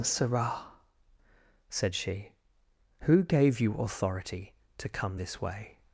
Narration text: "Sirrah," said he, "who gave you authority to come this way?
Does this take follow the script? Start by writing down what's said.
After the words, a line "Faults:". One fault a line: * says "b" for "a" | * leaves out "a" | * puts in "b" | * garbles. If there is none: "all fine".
"Sirrah," said she, "who gave you authority to come this way?
Faults:
* says "she" for "he"